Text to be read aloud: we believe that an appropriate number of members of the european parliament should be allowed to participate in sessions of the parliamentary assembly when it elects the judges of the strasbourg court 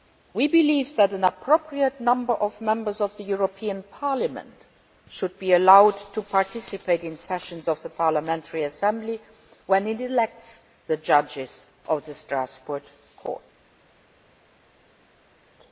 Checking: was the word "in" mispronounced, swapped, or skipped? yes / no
no